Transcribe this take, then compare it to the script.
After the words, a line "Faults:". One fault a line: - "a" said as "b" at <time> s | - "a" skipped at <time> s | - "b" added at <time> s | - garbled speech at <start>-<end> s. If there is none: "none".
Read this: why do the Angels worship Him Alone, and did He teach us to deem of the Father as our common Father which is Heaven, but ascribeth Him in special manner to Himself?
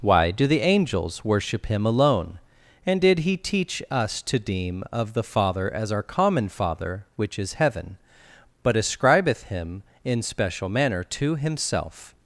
why do the Angels worship Him Alone, and did He teach us to deem of the Father as our common Father which is Heaven, but ascribeth Him in special manner to Himself?
Faults:
none